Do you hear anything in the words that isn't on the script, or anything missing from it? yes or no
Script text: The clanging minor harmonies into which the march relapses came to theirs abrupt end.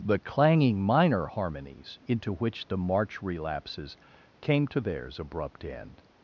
no